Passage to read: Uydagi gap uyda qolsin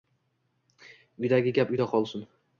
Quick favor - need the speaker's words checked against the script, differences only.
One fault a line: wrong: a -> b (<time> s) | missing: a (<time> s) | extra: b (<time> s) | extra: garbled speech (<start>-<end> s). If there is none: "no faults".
no faults